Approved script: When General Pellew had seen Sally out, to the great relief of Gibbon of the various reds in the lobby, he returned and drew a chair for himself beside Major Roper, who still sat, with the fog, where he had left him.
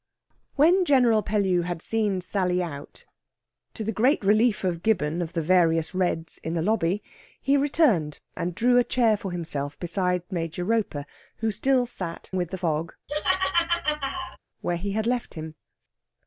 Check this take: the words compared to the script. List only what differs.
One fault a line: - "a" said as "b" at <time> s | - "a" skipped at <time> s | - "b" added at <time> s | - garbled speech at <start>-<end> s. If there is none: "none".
none